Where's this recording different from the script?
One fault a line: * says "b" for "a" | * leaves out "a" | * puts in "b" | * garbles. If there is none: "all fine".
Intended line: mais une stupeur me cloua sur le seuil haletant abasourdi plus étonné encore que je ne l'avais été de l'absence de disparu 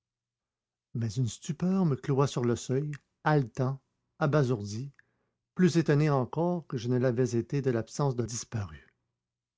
all fine